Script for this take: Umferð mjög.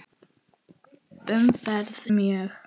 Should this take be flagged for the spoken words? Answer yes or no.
no